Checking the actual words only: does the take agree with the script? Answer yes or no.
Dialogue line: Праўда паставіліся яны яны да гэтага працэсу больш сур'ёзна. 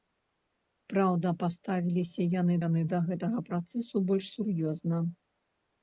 yes